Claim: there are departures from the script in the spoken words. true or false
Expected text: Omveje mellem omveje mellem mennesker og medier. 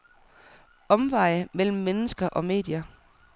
true